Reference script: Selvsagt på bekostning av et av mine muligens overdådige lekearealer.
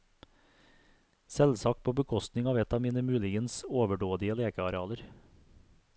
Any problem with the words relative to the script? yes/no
no